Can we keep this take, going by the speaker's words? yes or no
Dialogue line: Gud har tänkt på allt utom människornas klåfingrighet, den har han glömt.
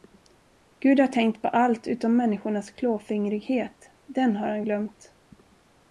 yes